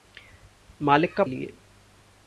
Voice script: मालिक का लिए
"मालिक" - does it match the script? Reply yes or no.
yes